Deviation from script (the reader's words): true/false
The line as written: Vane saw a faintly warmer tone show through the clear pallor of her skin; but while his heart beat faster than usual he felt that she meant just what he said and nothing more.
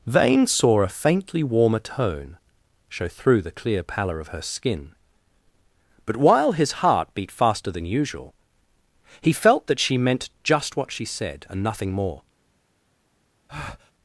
true